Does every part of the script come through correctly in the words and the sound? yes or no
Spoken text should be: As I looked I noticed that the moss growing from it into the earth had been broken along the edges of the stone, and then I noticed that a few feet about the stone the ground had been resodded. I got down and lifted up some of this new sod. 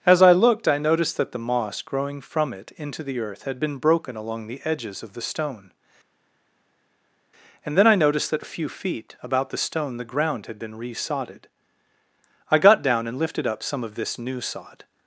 yes